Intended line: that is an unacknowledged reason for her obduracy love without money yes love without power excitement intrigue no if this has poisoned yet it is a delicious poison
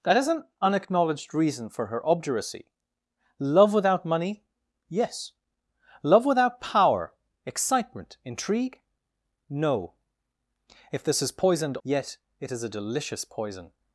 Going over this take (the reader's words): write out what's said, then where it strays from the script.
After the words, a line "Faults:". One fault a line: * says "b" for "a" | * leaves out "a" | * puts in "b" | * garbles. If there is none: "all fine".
that is an unacknowledged reason for her obduracy love without money yes love without power excitement intrigue no if this has poisoned yet it is a delicious poison
Faults:
all fine